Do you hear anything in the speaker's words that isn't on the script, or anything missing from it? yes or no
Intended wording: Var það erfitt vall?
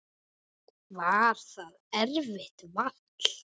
no